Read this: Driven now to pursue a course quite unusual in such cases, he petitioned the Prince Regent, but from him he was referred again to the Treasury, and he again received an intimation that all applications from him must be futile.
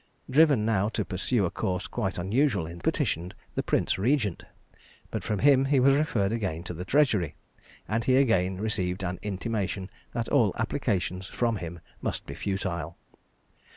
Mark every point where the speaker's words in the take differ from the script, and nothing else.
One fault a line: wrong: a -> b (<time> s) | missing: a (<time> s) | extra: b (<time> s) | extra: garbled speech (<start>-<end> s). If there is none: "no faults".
missing: such cases he (2.8 s)